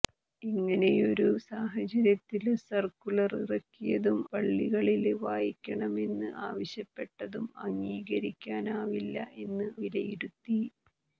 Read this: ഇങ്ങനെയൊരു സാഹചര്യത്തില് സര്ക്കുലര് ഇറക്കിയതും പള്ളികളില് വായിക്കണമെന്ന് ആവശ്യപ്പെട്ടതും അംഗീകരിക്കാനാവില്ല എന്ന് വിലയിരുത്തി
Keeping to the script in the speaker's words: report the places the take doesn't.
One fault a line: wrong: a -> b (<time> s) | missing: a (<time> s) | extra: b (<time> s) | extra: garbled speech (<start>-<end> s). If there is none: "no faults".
no faults